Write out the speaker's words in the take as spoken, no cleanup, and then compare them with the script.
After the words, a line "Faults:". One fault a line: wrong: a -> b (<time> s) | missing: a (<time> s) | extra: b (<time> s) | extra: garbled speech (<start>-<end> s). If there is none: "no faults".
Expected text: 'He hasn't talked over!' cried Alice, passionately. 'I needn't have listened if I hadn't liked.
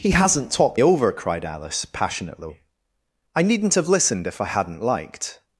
'He hasn't talked over!' cried Alice, passionately. 'I needn't have listened if I hadn't liked.
Faults:
no faults